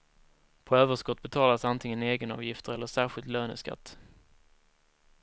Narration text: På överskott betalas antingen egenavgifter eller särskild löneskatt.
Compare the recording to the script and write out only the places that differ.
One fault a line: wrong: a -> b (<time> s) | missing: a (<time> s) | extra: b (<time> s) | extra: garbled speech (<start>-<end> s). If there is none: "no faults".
no faults